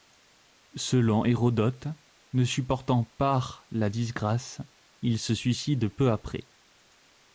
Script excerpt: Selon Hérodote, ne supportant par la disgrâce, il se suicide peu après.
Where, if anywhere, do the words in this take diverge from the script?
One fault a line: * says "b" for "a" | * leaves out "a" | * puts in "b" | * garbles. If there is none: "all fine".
all fine